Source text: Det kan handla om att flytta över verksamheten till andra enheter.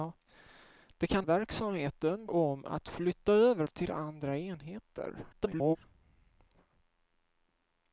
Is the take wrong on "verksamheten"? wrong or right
wrong